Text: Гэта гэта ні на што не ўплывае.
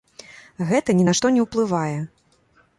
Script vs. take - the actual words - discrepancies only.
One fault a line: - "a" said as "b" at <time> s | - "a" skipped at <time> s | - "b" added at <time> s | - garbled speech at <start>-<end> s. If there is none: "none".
- "гэта" skipped at 0.9 s